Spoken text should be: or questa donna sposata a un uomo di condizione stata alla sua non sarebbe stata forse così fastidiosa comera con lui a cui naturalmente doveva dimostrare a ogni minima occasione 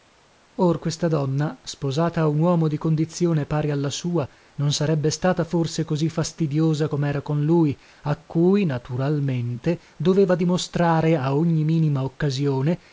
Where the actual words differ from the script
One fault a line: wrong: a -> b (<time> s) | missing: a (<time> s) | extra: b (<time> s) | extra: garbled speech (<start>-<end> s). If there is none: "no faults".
wrong: stata -> pari (3.5 s)